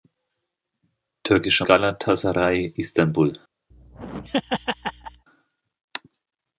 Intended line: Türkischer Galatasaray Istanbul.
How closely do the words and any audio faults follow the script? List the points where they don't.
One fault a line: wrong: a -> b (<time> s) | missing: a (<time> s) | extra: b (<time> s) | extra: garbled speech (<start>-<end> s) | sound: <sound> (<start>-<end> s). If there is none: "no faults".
sound: laugh (3.7-5.3 s)